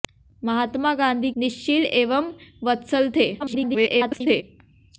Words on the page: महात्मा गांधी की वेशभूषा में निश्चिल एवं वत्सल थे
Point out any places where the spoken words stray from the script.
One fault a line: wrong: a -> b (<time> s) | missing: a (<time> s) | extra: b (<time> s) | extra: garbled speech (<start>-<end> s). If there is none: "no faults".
missing: की वेशभूषा में (1.3 s)
extra: garbled speech (3.4-4.4 s)